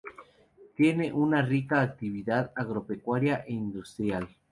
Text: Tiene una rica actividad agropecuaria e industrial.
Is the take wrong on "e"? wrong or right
right